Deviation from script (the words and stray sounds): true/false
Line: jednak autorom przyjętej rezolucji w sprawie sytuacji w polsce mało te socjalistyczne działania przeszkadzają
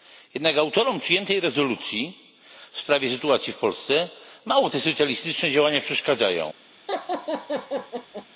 true